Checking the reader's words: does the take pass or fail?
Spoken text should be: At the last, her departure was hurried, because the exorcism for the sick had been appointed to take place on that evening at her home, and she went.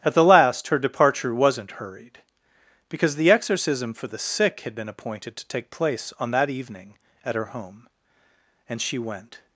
fail